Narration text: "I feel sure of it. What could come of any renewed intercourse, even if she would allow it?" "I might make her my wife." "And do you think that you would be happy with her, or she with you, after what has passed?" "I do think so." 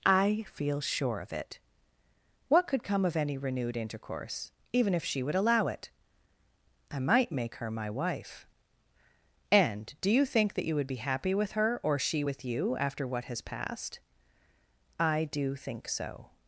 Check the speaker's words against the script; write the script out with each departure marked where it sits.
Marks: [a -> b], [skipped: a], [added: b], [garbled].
"I feel sure of it. What could come of any renewed intercourse, even if she would allow it?" "I might make her my wife." "And do you think that you would be happy with her, or she with you, after what has passed?" "I do think so."